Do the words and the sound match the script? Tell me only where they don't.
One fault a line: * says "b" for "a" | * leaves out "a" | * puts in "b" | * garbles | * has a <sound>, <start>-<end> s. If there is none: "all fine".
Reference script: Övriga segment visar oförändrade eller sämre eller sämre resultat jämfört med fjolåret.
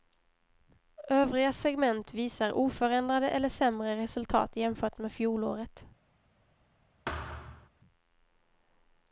* leaves out "eller sämre"
* has a thud, 7.1-7.7 s